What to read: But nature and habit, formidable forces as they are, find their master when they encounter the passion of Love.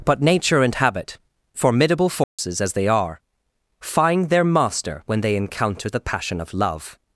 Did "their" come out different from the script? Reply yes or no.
no